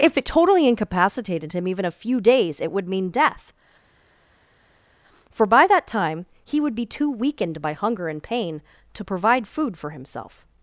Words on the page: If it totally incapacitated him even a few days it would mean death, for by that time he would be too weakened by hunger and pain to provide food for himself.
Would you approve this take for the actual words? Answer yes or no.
yes